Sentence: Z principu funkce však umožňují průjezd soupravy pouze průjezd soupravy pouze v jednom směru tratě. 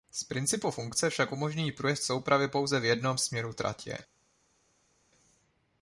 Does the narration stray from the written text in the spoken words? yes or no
yes